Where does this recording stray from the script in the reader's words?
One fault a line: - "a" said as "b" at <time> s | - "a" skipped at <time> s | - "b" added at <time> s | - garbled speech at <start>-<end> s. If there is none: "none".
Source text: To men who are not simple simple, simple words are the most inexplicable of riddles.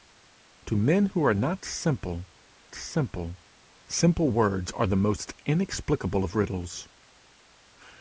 none